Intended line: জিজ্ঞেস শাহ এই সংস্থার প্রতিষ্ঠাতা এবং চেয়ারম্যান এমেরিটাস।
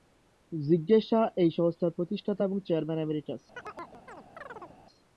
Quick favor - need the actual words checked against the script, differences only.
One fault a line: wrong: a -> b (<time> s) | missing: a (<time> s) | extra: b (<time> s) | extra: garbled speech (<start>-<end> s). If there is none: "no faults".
no faults